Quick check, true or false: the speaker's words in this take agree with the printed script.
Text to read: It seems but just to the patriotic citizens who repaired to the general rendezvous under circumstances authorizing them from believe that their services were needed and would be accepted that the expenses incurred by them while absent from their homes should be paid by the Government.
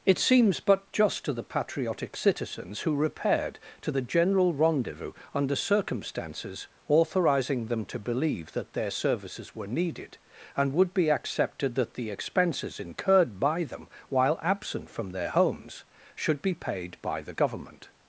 false